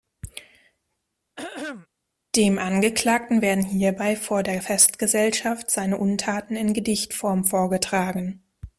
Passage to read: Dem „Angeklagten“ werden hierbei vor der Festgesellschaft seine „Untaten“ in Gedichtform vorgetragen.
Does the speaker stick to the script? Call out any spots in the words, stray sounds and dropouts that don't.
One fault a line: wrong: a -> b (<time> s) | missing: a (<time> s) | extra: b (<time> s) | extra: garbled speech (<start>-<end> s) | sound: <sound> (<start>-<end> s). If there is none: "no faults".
sound: throat clearing (1.4-1.9 s)